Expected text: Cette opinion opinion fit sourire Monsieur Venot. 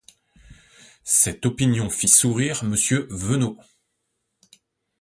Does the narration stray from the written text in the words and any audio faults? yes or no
yes